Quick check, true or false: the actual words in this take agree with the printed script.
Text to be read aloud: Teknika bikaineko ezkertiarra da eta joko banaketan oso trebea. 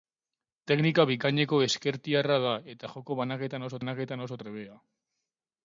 false